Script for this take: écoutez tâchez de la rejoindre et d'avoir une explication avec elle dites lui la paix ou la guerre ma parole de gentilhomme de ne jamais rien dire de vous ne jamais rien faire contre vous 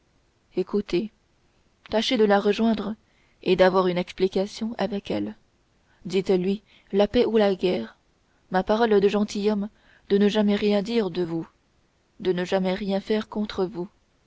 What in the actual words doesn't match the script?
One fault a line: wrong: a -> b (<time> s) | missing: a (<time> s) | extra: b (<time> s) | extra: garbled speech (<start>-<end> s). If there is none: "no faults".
extra: de (12.2 s)